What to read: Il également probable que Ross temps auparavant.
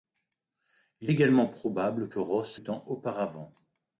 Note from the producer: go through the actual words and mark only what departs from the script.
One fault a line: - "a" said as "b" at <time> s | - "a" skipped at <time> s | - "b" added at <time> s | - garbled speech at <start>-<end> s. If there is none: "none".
none